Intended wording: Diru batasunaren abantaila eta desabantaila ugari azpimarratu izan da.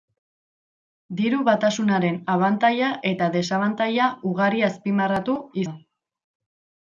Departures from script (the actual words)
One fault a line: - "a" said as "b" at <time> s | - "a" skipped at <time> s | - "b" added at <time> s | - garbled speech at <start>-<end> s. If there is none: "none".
- "izan" skipped at 5.4 s